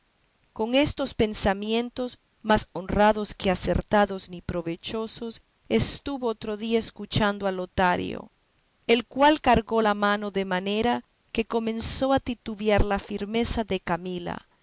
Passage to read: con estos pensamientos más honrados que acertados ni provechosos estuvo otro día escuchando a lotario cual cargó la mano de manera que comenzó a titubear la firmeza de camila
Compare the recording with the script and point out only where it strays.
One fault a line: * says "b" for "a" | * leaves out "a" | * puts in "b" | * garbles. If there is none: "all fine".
* puts in "el"